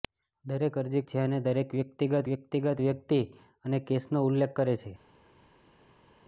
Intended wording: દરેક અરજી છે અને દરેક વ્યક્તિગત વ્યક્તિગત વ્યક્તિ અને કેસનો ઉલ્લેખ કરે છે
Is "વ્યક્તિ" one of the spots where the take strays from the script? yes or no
no